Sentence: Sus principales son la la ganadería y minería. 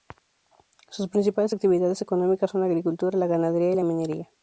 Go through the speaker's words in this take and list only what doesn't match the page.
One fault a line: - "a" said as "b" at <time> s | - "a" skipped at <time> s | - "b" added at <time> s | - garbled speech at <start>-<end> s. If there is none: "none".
- "actividades económicas" added at 1.5 s
- "agricultura" added at 2.7 s
- "la" added at 3.7 s